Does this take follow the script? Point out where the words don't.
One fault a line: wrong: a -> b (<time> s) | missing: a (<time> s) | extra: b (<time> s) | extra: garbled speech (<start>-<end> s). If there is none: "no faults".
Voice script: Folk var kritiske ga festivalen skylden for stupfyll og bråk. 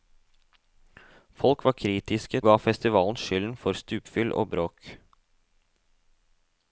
no faults